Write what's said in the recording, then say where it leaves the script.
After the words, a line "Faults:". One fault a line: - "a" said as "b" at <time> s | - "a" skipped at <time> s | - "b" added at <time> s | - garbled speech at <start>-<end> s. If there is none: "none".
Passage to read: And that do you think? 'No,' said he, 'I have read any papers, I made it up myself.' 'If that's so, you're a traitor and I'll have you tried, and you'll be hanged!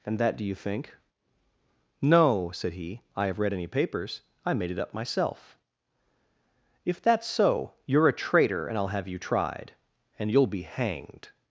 And that do you think? 'No,' said he, 'I have read any papers, I made it up myself.' 'If that's so, you're a traitor and I'll have you tried, and you'll be hanged!
Faults:
none